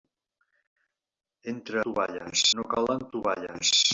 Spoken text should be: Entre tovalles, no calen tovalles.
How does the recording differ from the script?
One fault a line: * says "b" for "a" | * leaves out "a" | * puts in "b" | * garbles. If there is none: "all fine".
all fine